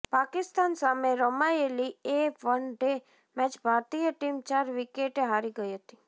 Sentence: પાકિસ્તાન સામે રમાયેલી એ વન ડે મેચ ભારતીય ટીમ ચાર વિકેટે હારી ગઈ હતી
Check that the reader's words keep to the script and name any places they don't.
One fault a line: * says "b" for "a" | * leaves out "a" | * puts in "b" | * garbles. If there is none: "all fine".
all fine